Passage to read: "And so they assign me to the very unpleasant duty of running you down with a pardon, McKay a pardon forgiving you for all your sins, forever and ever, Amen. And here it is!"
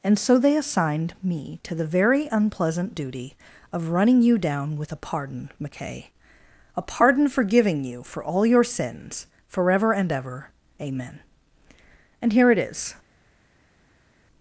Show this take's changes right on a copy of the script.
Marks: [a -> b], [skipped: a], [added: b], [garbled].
"And so they [assign -> assigned] me to the very unpleasant duty of running you down with a pardon, McKay a pardon forgiving you for all your sins, forever and ever, Amen. And here it is!"